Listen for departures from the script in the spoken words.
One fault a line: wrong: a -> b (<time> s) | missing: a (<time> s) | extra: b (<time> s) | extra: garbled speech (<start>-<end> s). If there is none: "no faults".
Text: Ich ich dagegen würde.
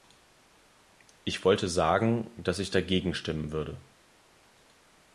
extra: wollte sagen dass (1.4 s)
extra: stimmen (3.1 s)